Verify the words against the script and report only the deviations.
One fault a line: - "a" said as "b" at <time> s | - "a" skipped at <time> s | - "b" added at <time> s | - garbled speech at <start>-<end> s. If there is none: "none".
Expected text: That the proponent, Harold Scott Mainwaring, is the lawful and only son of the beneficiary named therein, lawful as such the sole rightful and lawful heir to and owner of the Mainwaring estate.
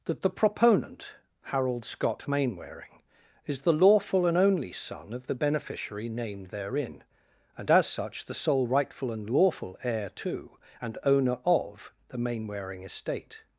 - "lawful" said as "and" at 7.6 s